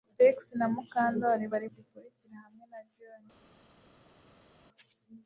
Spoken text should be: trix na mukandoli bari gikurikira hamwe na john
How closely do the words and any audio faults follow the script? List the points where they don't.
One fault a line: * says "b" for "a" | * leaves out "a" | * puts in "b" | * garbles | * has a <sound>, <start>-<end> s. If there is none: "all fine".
all fine